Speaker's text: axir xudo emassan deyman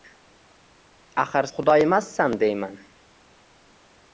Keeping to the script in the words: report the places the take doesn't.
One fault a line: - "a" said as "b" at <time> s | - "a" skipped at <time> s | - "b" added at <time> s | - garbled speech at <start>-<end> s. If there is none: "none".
none